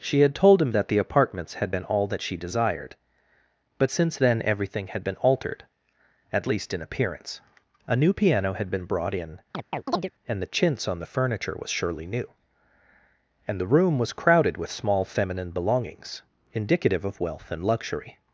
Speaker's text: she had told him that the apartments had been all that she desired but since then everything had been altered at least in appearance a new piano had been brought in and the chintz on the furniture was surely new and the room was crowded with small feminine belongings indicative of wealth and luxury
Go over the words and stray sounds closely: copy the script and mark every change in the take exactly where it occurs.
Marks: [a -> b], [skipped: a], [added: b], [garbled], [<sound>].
she had told him that the apartments had been all that she desired but since then everything had been altered at least in appearance a new piano had been brought in [chirp] and the chintz on the furniture was surely new and the room was crowded with small feminine belongings indicative of wealth and luxury